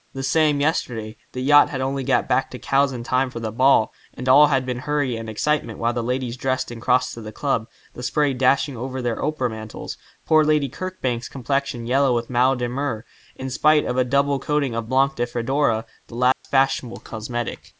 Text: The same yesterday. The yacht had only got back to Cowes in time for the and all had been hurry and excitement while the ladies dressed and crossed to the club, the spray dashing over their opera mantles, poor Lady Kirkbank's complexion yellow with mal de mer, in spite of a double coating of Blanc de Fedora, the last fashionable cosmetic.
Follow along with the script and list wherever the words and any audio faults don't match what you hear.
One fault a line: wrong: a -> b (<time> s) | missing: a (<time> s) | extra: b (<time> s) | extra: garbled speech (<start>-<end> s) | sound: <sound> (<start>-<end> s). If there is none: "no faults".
extra: ball (3.5 s)
sound: dropout (16.3-16.4 s)